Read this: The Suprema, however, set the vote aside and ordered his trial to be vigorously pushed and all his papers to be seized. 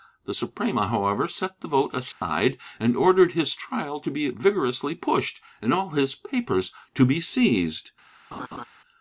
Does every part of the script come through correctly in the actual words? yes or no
yes